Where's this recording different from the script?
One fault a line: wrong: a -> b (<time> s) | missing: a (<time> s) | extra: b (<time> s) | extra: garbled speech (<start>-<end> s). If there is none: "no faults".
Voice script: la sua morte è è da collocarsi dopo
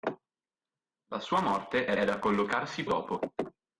no faults